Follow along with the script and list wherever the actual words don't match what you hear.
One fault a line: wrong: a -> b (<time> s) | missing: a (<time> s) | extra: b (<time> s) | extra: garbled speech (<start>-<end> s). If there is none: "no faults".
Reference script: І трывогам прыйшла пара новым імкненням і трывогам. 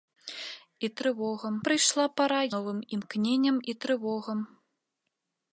no faults